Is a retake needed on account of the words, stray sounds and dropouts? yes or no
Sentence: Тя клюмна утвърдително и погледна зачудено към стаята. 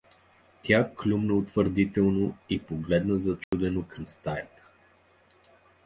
yes